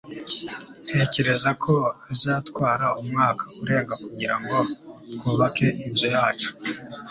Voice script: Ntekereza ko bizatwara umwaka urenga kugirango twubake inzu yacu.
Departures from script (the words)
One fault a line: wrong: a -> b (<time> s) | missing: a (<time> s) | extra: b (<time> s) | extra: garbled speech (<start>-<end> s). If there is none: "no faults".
no faults